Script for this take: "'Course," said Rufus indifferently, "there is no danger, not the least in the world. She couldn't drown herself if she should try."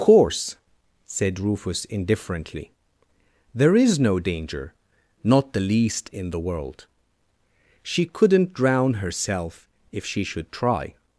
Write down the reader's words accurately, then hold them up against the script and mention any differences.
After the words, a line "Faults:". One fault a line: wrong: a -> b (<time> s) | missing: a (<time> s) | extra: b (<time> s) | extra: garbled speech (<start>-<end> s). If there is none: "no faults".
"'Course," said Rufus indifferently, "there is no danger, not the least in the world. She couldn't drown herself if she should try."
Faults:
no faults